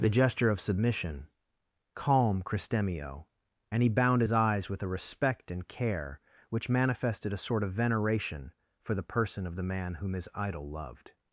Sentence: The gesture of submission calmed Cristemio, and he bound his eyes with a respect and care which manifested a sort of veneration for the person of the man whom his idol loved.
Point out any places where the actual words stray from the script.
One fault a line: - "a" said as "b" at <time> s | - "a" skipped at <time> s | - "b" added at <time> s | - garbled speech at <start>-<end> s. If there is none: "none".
- "calmed" said as "calm" at 1.9 s